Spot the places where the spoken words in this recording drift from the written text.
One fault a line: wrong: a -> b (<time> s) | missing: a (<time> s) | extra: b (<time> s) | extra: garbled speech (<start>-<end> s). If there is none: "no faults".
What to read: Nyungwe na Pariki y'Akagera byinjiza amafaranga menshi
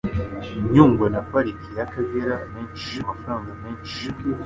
wrong: byinjiza -> menshi (2.5 s)